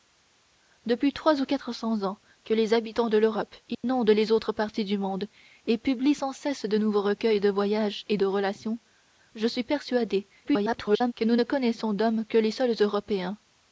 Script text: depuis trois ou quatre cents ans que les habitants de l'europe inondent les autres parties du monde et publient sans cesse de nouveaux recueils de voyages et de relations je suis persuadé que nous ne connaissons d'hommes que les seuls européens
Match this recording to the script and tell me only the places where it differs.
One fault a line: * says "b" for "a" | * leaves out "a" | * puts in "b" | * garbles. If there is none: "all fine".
* garbles